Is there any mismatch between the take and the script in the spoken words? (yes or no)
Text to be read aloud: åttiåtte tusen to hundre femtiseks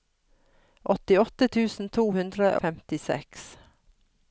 no